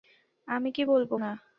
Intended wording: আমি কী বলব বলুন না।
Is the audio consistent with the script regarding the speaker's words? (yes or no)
no